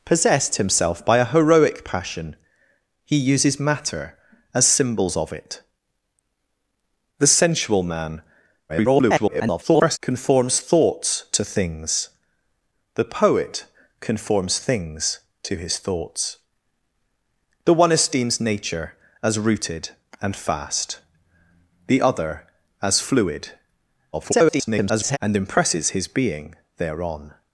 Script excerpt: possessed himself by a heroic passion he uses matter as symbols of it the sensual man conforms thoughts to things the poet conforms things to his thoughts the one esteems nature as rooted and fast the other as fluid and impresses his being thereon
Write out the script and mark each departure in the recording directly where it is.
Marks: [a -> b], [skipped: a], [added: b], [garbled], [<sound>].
possessed himself by a heroic passion he uses matter as symbols of it the sensual man [garbled] conforms thoughts to things the poet conforms things to his thoughts the one esteems nature as rooted and fast the other as fluid [garbled] and impresses his being thereon